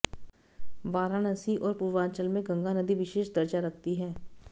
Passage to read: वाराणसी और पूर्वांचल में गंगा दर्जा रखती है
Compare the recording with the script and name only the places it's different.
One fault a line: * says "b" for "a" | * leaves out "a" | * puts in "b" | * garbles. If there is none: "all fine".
* puts in "नदी विशेष"